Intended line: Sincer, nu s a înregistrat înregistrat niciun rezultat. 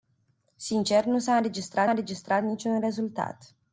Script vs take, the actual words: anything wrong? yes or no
no